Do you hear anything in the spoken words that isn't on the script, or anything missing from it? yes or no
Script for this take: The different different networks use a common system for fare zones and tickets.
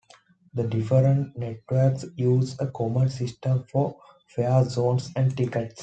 yes